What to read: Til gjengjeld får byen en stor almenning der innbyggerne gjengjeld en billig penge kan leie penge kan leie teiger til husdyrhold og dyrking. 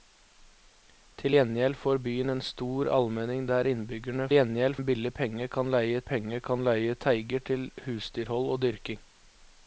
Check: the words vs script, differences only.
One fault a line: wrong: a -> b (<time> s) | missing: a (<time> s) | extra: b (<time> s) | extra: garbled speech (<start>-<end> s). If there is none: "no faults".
no faults